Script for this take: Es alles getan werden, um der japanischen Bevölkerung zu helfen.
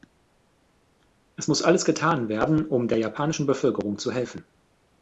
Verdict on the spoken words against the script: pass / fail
fail